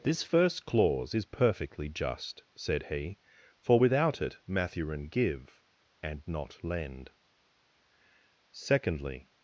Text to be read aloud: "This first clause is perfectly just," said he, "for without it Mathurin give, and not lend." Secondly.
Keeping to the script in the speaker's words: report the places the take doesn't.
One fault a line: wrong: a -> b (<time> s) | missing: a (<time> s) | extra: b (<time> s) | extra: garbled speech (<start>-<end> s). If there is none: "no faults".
no faults